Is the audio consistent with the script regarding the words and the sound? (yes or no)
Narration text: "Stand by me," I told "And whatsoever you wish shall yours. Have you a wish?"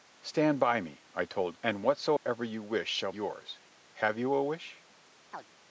no